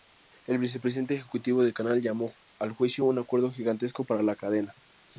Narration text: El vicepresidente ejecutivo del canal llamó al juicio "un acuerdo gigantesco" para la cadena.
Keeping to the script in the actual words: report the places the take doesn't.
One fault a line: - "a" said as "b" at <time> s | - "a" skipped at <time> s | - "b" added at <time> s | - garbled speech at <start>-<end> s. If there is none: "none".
none